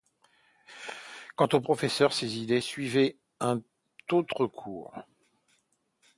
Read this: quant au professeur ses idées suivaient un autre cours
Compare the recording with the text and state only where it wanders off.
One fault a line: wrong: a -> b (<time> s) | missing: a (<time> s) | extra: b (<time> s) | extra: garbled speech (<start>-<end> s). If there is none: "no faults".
no faults